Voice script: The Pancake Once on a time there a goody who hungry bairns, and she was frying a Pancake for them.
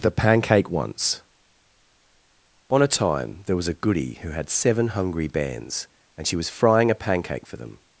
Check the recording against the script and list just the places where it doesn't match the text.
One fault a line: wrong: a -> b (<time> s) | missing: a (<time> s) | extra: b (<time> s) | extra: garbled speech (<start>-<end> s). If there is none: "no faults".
extra: was (3.5 s)
extra: had seven (4.3 s)